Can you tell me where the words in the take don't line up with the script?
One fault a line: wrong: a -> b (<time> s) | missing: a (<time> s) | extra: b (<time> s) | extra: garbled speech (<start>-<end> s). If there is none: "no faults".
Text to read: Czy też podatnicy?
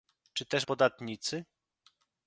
no faults